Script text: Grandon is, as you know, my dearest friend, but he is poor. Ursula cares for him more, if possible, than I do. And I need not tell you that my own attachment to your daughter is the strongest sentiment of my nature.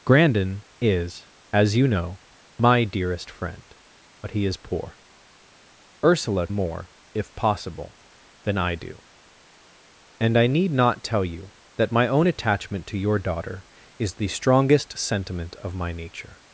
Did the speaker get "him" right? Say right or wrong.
wrong